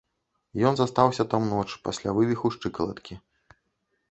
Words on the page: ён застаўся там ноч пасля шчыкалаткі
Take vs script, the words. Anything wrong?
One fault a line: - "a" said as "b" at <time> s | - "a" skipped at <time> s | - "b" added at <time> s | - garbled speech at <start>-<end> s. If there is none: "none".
- "вывіху" added at 2.2 s